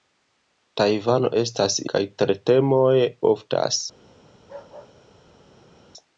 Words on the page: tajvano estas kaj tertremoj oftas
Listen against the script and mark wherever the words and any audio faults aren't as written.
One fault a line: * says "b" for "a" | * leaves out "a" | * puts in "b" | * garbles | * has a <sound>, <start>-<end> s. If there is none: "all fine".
* has a bark, 4.3-5.8 s